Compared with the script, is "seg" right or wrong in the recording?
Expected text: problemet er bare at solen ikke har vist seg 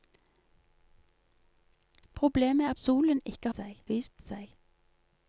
right